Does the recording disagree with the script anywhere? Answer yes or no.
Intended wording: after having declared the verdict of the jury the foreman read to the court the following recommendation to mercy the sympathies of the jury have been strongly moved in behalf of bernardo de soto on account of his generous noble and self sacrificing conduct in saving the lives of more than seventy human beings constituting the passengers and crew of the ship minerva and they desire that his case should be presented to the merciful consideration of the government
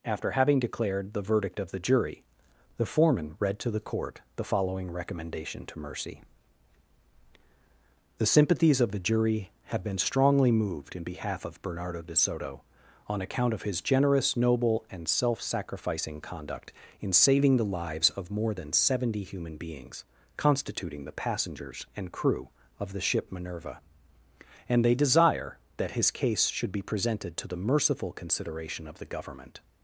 no